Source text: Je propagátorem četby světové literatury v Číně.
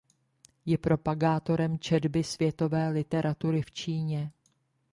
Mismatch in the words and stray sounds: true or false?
false